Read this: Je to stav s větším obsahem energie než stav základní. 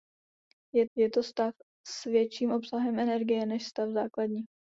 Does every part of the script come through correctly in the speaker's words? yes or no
no